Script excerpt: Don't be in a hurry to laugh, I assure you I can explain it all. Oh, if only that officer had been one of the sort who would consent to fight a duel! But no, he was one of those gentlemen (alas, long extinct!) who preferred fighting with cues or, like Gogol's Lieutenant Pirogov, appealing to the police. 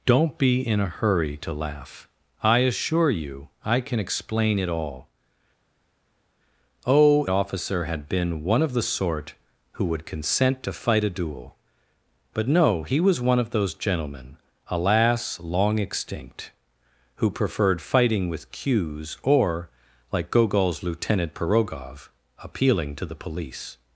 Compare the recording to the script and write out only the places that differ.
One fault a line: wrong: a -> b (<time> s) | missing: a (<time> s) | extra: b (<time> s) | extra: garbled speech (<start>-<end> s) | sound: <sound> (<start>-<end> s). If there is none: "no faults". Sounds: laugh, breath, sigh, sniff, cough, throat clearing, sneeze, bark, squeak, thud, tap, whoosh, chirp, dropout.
missing: if only that (7.3 s)